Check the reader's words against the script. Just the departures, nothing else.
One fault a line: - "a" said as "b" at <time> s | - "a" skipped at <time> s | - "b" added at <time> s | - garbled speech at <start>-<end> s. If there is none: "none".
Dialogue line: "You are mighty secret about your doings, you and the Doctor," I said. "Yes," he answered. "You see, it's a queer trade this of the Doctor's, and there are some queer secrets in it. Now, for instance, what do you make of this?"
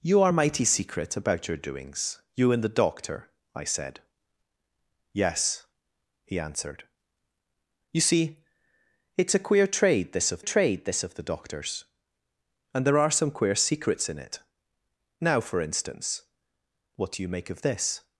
- "trade this of" added at 10.4 s